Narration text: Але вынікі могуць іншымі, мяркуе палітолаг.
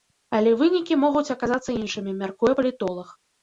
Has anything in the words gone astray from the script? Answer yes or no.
yes